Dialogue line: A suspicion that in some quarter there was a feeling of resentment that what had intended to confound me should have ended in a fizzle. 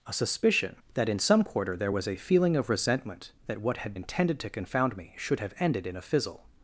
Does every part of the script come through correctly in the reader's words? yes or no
yes